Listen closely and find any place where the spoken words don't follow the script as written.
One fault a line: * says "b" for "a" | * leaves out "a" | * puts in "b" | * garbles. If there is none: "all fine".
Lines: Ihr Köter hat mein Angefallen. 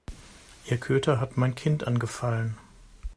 * puts in "Kind"